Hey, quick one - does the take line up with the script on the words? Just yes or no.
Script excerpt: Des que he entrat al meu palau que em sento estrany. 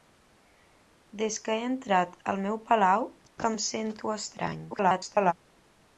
no